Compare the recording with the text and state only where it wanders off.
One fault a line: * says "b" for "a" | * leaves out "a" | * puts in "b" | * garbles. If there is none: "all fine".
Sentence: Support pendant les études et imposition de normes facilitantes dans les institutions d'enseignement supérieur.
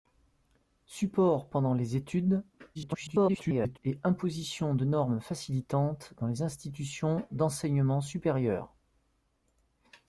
* garbles